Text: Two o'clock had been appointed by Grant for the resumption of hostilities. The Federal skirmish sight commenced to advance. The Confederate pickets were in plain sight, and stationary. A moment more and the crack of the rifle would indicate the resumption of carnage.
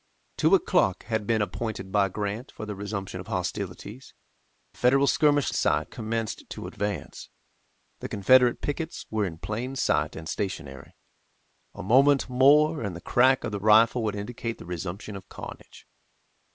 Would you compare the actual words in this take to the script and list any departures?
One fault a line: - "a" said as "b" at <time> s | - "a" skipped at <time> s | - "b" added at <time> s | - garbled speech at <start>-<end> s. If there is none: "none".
none